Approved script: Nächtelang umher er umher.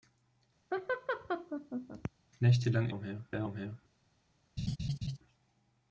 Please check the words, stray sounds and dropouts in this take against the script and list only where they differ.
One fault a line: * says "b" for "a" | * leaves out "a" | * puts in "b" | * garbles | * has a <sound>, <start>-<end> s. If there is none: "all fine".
* has a laugh, 0.7-2.1 s
* has a laugh, 4.6-5.2 s